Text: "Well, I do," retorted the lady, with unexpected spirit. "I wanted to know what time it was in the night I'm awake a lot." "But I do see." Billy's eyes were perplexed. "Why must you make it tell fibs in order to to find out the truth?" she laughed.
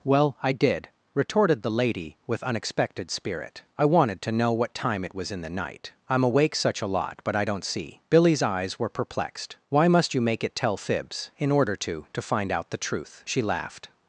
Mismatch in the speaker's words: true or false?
true